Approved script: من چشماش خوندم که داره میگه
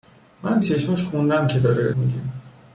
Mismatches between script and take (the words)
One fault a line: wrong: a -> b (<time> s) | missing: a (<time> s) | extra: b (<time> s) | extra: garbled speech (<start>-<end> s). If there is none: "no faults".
no faults